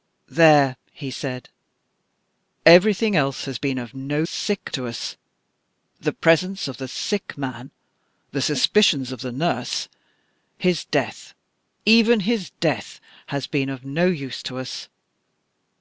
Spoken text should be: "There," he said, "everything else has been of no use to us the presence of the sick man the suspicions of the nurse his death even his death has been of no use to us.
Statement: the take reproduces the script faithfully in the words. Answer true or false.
false